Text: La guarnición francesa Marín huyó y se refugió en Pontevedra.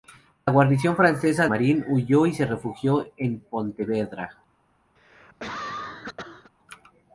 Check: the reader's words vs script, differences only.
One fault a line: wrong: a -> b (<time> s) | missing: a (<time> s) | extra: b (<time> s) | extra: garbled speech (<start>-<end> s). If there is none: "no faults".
no faults